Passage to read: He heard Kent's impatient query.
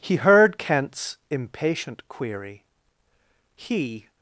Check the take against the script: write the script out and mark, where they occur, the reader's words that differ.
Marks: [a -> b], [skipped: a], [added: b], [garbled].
He heard Kent's impatient query. [added: He]